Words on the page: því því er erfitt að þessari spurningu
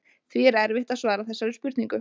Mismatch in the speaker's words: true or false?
true